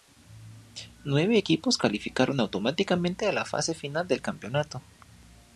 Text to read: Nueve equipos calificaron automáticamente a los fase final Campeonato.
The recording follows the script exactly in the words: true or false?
false